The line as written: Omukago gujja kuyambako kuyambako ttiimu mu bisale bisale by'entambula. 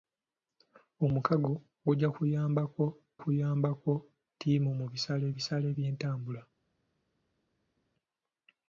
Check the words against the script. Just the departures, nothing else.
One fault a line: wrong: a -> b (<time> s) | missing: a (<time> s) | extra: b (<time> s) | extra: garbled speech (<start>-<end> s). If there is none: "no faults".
no faults